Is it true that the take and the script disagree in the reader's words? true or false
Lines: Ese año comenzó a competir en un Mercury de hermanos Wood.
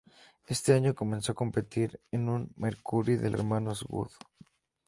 false